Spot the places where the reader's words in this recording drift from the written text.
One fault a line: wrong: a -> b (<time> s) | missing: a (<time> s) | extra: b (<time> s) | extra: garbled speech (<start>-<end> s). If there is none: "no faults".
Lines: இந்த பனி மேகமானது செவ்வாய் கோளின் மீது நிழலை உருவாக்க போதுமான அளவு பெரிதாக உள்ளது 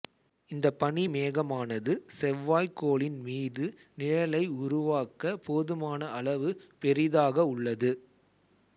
no faults